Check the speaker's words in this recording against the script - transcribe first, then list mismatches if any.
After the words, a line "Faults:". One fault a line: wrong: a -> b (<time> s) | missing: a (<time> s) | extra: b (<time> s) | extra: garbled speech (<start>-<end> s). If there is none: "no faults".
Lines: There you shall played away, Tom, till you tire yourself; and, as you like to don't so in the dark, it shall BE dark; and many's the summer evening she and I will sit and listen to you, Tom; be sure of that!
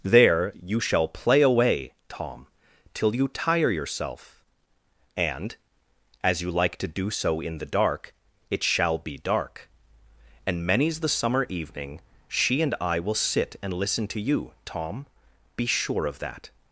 There you shall play away, Tom, till you tire yourself; and, as you like to do so in the dark, it shall BE dark; and many's the summer evening she and I will sit and listen to you, Tom; be sure of that!
Faults:
wrong: played -> play (1.1 s)
wrong: don't -> do (6.9 s)